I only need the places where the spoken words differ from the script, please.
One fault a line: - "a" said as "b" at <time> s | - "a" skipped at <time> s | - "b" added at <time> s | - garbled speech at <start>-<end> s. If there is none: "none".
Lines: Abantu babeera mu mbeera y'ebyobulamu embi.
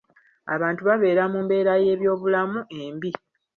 none